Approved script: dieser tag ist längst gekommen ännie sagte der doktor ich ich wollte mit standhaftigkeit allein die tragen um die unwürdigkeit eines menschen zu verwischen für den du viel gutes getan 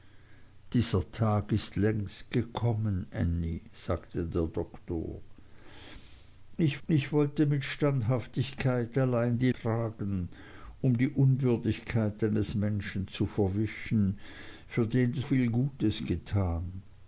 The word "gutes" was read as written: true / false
true